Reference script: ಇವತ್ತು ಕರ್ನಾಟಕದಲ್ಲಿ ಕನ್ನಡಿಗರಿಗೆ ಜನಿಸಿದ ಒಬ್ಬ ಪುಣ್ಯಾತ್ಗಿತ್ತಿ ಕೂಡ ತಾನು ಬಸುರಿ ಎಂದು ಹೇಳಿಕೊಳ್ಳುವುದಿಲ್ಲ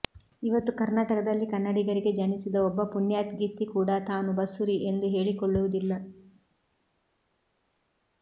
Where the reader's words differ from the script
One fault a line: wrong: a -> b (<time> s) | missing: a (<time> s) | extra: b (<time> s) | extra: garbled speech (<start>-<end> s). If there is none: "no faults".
no faults